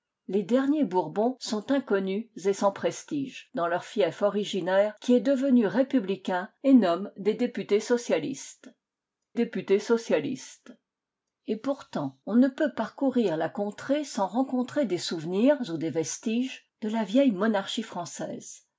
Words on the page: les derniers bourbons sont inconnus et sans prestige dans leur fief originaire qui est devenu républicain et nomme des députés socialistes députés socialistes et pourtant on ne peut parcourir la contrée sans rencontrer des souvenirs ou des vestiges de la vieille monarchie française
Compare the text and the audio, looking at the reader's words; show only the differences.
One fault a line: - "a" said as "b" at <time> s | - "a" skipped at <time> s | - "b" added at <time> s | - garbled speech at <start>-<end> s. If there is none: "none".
none